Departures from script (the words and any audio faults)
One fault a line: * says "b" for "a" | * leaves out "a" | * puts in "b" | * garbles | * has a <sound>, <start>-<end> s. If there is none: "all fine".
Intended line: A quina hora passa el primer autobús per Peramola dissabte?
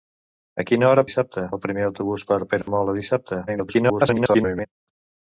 * says "dissabte" for "passa"
* has a dropout, 2.6-2.7 s
* garbles